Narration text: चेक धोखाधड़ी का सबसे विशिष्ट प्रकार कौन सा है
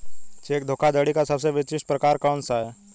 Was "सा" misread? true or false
false